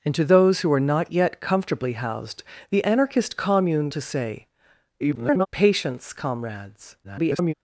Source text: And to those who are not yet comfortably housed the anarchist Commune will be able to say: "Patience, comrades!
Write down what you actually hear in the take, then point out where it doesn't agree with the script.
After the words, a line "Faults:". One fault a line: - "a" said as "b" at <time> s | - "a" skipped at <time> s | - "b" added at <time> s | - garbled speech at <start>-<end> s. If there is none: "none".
And to those who are not yet comfortably housed the anarchist Commune to say: [garbled] "Patience, comrades! [garbled]
Faults:
- "will be able" skipped at 3.9 s
- garbled speech at 5.0-5.5 s
- garbled speech at 7.0-7.5 s